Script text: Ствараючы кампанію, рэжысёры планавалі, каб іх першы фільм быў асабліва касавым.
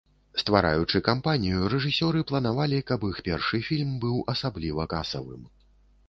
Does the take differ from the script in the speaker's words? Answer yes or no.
no